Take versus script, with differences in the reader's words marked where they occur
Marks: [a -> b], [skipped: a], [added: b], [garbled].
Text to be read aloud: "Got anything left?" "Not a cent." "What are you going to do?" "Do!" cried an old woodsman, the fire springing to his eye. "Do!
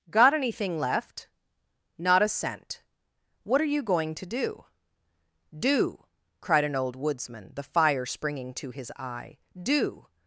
"Got anything left?" "Not a cent." "What are you going to do?" "Do!" cried an old woodsman, the fire springing to his eye. "Do!